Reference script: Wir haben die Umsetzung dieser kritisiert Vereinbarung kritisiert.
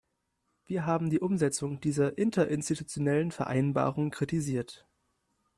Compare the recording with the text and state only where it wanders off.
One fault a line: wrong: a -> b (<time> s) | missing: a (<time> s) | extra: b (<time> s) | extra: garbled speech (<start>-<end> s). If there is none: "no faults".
wrong: kritisiert -> interinstitutionellen (2.2 s)